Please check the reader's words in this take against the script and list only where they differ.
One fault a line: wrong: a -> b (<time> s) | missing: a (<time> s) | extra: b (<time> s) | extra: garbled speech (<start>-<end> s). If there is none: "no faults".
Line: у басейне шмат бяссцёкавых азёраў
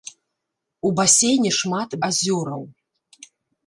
missing: бяссцёкавых (1.9 s)